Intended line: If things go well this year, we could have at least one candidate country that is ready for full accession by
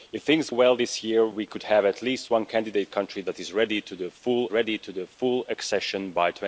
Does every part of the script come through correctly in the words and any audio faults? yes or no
no